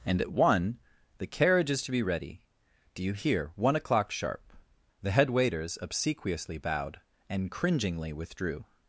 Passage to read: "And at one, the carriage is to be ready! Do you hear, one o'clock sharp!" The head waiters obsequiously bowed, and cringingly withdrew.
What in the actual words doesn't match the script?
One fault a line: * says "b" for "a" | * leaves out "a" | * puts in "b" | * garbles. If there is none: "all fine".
all fine